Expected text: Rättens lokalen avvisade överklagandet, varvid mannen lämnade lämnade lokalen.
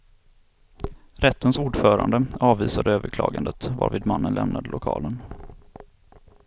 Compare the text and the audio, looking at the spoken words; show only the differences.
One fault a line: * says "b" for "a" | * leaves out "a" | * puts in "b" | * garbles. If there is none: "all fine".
* says "ordförande" for "lokalen"
* leaves out "lämnade"